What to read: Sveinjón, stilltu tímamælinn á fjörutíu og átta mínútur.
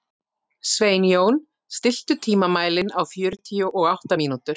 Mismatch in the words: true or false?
false